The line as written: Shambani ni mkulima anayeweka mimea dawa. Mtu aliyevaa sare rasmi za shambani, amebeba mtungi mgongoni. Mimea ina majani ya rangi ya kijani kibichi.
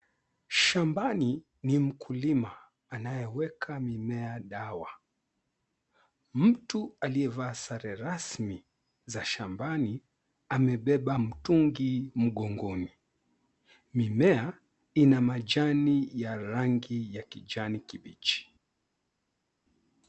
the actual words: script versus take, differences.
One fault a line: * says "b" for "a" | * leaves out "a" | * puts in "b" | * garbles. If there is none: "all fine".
all fine